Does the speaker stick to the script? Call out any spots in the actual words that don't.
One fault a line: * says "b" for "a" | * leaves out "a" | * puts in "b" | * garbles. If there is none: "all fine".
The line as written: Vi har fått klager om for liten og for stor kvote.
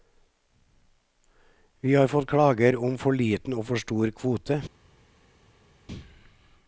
all fine